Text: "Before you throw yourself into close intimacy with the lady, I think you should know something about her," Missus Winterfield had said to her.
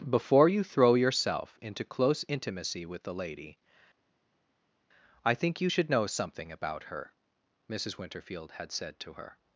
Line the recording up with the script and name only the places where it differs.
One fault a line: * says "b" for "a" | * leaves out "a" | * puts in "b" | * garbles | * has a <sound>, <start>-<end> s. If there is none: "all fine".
all fine